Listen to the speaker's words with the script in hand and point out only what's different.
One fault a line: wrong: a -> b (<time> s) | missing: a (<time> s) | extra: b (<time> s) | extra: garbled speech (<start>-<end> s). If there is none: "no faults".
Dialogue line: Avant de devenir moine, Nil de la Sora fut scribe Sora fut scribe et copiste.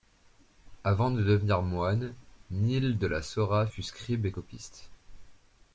missing: Sora fut scribe (4.3 s)